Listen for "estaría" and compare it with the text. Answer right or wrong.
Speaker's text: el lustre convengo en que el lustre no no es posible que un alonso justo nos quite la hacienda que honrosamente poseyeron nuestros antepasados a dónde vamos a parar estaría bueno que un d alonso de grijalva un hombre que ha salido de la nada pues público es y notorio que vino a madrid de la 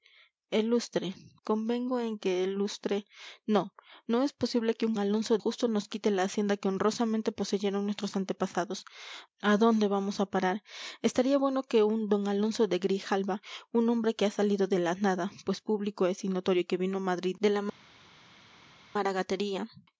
right